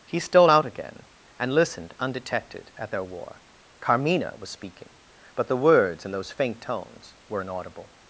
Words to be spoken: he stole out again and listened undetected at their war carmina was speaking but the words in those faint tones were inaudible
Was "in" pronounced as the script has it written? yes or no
yes